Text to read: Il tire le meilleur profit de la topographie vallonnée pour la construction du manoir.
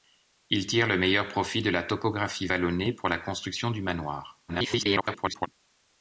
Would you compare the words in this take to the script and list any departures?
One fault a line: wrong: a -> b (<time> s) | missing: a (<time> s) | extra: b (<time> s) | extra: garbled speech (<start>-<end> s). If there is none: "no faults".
extra: garbled speech (4.5-5.5 s)